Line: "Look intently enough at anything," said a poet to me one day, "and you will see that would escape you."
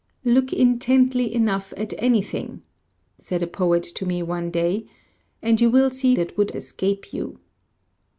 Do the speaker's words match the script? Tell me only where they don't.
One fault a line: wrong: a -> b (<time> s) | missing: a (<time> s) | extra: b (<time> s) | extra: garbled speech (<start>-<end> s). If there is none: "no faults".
no faults